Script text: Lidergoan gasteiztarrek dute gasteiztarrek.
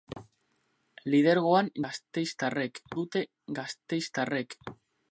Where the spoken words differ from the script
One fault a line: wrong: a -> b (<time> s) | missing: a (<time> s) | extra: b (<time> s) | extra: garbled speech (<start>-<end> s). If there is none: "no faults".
no faults